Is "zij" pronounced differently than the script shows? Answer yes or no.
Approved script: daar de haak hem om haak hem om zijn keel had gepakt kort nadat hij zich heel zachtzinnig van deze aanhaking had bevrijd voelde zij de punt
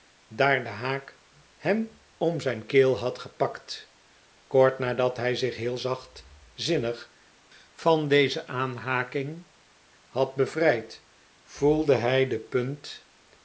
yes